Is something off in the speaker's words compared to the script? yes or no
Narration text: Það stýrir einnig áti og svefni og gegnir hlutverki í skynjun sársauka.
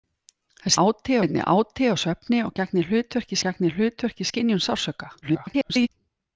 yes